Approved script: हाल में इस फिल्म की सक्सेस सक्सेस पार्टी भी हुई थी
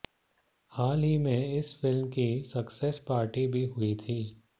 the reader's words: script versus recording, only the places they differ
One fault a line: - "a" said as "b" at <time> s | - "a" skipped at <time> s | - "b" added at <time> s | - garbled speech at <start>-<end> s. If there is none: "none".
- "ही" added at 1.0 s
- "सक्सेस" skipped at 3.0 s